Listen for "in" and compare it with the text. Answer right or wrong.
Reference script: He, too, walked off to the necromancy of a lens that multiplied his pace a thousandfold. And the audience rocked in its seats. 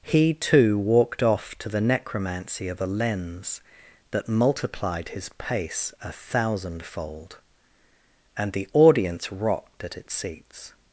wrong